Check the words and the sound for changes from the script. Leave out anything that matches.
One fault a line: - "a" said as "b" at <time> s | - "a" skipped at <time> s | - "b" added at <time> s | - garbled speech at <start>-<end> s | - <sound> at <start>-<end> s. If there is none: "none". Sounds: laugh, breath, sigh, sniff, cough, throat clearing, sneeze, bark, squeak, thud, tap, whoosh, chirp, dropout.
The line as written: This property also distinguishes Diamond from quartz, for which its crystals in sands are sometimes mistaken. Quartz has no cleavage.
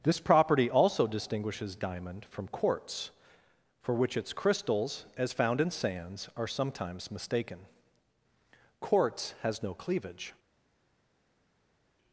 - "as found" added at 5.2 s